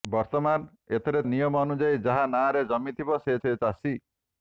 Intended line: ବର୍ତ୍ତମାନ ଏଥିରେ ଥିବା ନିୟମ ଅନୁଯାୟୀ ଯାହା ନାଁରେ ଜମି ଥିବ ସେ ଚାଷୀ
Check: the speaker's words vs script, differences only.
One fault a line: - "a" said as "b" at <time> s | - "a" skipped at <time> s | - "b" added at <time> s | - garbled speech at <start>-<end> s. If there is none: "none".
- "ଥିବା" skipped at 1.2 s
- "ସେ" added at 3.4 s